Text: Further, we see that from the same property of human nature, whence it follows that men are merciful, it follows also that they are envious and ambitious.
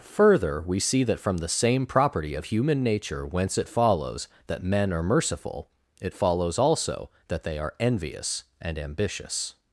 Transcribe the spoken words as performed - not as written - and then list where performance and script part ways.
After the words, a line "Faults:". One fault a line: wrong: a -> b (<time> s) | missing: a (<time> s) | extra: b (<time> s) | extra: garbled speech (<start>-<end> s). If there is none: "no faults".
Further, we see that from the same property of human nature, whence it follows that men are merciful, it follows also that they are envious and ambitious.
Faults:
no faults